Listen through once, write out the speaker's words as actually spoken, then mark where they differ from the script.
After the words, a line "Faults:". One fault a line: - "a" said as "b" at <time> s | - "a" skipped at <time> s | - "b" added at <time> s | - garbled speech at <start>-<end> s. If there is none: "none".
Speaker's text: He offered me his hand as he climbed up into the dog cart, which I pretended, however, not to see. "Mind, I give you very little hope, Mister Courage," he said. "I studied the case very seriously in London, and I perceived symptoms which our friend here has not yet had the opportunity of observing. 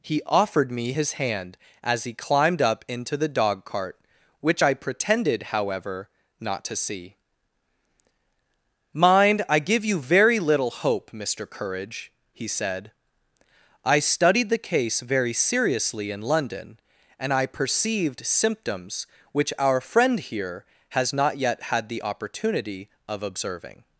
He offered me his hand as he climbed up into the dog cart, which I pretended, however, not to see. "Mind, I give you very little hope, Mister Courage," he said. "I studied the case very seriously in London, and I perceived symptoms which our friend here has not yet had the opportunity of observing.
Faults:
none